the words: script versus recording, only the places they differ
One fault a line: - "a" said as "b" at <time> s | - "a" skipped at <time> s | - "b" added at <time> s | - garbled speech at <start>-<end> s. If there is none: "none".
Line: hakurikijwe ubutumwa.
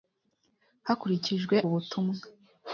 none